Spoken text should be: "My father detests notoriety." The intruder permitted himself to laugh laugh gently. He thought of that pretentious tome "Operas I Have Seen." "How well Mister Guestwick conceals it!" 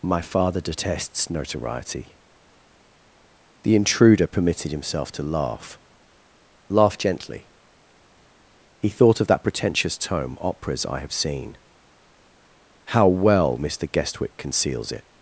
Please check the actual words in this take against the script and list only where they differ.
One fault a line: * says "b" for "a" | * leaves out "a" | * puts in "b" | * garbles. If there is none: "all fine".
all fine